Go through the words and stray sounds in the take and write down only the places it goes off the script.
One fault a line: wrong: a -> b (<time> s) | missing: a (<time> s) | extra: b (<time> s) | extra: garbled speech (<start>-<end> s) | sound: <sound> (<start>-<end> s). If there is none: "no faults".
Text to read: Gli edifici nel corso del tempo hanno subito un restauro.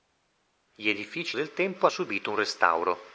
missing: nel corso (1.4 s)
missing: hanno (1.9 s)